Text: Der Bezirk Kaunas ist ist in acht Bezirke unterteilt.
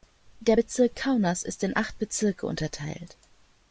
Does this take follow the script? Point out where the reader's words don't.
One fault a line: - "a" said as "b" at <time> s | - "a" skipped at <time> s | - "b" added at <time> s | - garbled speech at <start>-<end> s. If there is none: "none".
- "ist" skipped at 1.6 s